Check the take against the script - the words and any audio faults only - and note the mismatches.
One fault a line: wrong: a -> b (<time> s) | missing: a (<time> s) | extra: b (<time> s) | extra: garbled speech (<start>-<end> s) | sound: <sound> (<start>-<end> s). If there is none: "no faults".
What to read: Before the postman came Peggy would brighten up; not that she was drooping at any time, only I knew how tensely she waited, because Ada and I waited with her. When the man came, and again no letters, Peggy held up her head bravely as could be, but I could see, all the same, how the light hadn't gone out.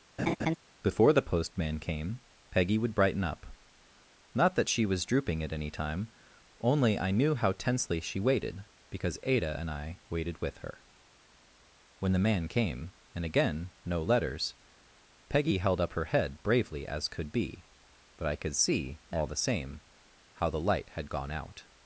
sound: laugh (0.2-0.6 s)
wrong: hadn't -> had (21.0 s)